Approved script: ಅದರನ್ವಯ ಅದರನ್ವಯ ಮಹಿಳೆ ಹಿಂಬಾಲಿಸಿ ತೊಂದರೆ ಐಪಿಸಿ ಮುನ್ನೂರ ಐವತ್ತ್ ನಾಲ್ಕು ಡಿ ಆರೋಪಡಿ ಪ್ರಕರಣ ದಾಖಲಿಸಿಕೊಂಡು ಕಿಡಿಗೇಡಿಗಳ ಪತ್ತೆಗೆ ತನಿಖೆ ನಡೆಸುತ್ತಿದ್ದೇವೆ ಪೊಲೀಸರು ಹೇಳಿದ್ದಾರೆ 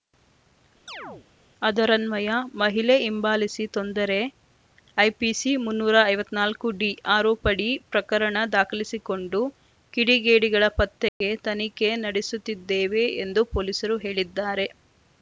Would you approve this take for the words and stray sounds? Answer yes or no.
no